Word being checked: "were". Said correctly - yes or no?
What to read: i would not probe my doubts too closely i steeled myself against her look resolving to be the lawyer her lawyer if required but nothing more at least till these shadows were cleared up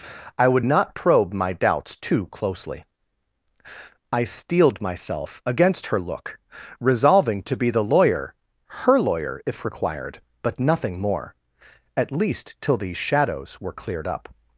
yes